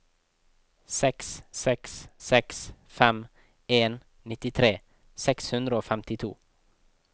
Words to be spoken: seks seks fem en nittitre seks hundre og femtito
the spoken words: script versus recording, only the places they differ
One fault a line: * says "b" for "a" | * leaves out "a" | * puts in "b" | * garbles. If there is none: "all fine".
* puts in "seks"